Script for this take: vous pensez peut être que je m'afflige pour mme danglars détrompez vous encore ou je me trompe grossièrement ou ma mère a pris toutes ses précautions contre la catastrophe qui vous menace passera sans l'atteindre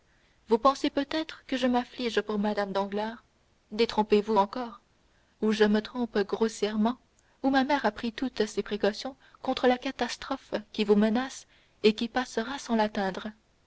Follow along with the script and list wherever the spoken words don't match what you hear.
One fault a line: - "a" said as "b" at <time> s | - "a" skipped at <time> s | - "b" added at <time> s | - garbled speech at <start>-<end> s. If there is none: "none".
- "et qui" added at 11.8 s